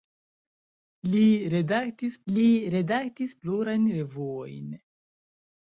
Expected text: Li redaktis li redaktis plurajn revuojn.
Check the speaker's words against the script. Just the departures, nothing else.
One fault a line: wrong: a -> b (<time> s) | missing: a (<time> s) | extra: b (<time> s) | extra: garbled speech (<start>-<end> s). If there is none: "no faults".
no faults